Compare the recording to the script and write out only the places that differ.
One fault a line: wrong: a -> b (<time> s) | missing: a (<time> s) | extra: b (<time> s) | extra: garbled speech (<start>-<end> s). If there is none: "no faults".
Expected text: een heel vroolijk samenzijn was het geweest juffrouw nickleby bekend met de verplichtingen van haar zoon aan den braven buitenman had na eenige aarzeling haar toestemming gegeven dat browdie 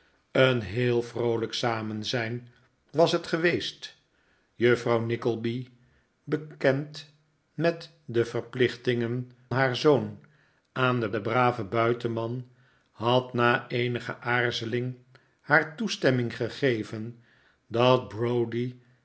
missing: van (9.3 s)
extra: den (11.1 s)